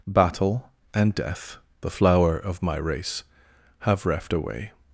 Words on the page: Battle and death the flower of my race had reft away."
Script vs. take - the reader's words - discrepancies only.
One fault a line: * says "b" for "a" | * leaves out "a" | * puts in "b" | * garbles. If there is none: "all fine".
* says "have" for "had"